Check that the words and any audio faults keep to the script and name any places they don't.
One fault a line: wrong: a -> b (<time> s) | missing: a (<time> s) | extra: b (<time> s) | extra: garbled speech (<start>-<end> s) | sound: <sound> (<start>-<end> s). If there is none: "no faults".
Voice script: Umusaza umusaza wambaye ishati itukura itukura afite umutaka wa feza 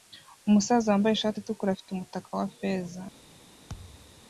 missing: umusaza (0.9 s)
missing: itukura (1.7 s)
sound: thud (3.7-4.2 s)